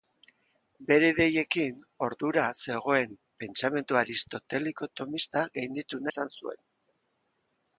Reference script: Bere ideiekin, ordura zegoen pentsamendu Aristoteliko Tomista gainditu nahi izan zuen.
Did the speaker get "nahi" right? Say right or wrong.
wrong